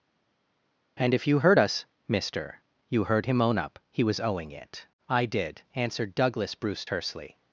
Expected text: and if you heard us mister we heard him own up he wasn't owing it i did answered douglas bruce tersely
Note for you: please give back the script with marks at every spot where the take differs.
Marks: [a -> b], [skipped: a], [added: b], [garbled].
and if you heard us mister [we -> you] heard him own up he [wasn't -> was] owing it i did answered douglas bruce tersely